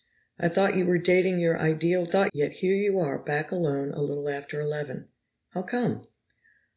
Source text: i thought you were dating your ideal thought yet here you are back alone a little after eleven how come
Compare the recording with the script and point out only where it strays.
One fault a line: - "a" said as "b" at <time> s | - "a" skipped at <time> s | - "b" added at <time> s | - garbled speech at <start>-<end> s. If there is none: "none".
none